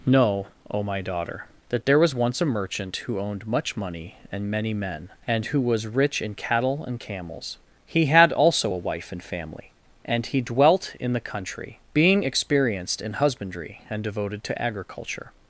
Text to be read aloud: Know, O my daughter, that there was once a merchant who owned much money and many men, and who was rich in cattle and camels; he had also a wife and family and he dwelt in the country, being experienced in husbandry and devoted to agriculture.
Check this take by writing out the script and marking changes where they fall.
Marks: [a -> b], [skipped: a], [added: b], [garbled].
Know, O my daughter, that there was once a merchant who owned much money and many men, and who was rich in cattle and camels; he had also a wife and family and he dwelt in the country, being experienced in husbandry and devoted to agriculture.